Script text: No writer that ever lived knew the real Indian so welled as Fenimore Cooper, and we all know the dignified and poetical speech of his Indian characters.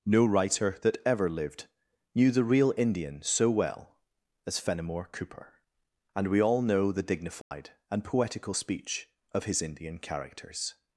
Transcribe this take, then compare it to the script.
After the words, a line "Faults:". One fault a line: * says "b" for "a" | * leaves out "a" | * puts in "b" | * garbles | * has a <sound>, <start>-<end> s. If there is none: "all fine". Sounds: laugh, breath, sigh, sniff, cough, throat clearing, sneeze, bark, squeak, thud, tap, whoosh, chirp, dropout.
No writer that ever lived knew the real Indian so well as Fenimore Cooper, and we all know the dignified and poetical speech of his Indian characters.
Faults:
* says "well" for "welled"
* has a dropout, 7.4-7.5 s